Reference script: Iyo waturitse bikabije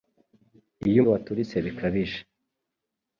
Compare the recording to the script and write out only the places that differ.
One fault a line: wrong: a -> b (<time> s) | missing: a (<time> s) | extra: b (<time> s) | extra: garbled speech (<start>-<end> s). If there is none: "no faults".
no faults